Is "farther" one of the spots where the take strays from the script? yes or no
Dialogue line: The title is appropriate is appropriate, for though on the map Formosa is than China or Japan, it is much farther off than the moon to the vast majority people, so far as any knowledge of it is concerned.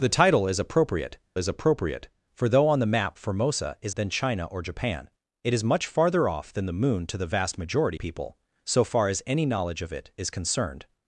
no